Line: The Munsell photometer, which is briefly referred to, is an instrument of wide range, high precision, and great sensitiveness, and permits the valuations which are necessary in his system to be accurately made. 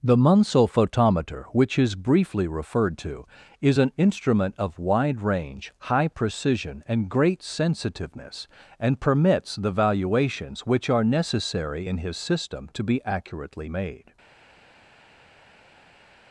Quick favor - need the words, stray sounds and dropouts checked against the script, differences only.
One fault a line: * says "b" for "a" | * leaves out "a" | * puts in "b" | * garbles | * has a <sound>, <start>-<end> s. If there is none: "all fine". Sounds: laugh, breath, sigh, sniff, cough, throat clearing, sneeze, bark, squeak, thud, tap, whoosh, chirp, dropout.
all fine